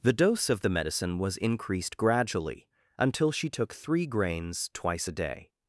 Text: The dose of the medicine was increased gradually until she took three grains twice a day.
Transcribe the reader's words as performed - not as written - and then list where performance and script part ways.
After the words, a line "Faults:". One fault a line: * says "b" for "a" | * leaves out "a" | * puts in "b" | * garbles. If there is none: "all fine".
The dose of the medicine was increased gradually until she took three grains twice a day.
Faults:
all fine